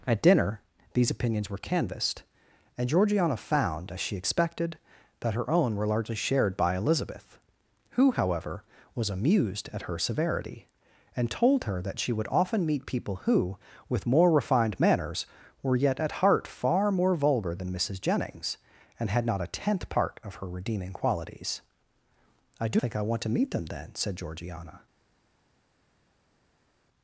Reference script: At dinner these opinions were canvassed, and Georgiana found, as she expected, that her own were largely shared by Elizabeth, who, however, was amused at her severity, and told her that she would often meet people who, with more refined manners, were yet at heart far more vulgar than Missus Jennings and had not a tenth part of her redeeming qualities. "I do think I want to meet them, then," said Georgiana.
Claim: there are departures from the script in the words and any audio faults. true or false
false